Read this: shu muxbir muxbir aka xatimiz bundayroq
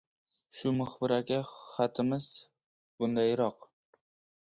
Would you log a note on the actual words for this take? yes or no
yes